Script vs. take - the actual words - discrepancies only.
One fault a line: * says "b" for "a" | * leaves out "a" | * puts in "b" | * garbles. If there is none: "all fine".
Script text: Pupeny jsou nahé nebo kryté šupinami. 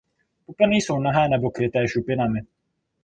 all fine